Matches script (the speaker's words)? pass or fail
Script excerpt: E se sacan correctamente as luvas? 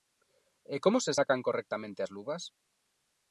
fail